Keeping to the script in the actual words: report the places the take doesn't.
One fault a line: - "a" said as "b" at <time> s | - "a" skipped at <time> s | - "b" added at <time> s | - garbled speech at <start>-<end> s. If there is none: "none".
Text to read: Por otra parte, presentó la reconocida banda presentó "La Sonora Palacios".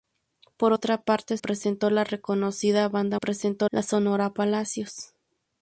none